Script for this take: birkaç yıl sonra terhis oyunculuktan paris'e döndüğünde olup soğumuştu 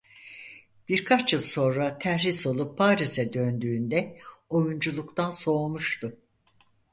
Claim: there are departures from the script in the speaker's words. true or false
true